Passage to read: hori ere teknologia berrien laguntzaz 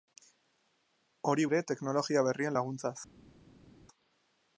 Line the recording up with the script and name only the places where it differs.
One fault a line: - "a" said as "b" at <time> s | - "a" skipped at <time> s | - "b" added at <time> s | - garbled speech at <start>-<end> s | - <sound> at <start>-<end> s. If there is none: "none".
none